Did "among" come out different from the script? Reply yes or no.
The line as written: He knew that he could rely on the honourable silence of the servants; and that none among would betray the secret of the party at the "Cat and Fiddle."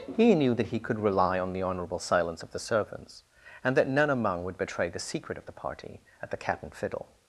no